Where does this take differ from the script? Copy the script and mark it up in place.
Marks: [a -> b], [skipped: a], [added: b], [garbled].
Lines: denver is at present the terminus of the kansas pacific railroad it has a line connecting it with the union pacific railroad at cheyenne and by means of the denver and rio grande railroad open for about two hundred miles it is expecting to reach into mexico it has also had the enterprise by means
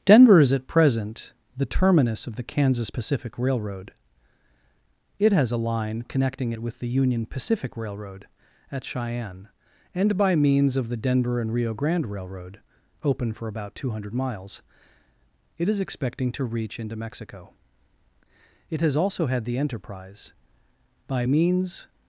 denver is at present the terminus of the kansas pacific railroad it has a line connecting it with the union pacific railroad at cheyenne and by means of the denver and rio grande railroad open for about two hundred miles it is expecting to reach into mexico it has also had the enterprise by means